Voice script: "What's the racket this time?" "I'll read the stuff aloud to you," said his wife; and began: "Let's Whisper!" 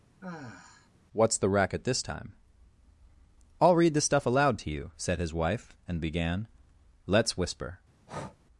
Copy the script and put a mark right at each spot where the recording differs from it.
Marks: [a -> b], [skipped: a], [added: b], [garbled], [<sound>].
[sigh] "What's the racket this time?" "I'll read the stuff aloud to you," said his wife; and began: "Let's Whisper!" [breath]